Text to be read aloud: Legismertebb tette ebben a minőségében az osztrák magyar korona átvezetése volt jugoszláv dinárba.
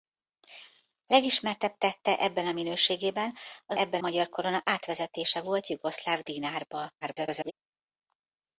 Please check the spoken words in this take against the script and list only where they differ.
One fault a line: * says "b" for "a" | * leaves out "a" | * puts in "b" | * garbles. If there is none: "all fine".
* says "ebben" for "osztrák"
* garbles